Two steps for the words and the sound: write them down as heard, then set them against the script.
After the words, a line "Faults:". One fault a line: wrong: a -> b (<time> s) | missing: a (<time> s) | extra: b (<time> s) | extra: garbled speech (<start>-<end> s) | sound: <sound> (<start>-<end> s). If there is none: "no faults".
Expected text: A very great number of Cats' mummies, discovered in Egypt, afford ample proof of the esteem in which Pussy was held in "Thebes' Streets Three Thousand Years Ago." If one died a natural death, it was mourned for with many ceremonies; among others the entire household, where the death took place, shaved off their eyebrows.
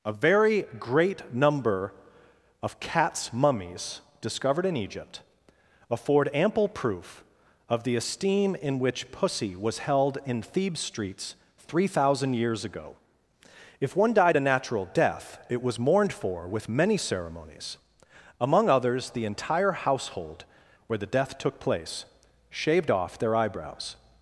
A very great number of Cats' mummies, discovered in Egypt, afford ample proof of the esteem in which Pussy was held in "Thebes' Streets Three Thousand Years Ago." If one died a natural death, it was mourned for with many ceremonies; among others the entire household, where the death took place, shaved off their eyebrows.
Faults:
no faults